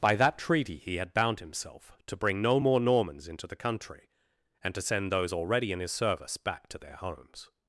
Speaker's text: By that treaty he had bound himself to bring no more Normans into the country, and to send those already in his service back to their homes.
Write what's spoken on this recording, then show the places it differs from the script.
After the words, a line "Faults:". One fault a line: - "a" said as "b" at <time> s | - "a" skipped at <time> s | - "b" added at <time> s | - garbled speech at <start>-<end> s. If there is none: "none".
By that treaty he had bound himself to bring no more Normans into the country, and to send those already in his service back to their homes.
Faults:
none